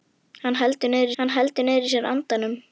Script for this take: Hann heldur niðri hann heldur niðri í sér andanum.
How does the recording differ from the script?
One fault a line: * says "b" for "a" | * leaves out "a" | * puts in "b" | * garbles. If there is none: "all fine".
all fine